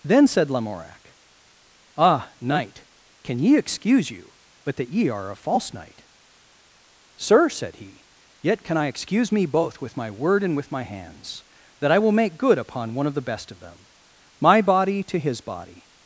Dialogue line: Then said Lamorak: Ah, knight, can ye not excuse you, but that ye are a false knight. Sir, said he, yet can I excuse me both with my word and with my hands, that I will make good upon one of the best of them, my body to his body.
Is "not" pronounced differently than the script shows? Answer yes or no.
yes